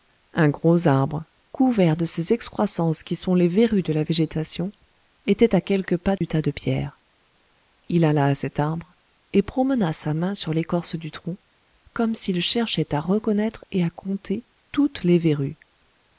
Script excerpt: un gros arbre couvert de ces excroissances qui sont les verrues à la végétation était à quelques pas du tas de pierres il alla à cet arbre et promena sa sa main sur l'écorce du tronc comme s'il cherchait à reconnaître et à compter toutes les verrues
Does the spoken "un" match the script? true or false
true